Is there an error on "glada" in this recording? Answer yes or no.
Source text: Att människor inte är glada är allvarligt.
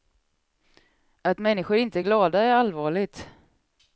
no